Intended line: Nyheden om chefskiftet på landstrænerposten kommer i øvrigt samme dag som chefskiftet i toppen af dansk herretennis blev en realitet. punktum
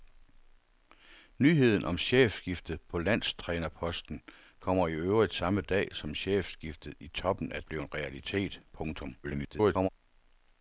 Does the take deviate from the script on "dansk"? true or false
true